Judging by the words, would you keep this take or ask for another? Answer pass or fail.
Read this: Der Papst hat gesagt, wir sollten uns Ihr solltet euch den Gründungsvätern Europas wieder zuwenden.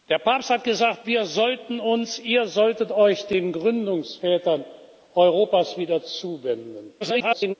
fail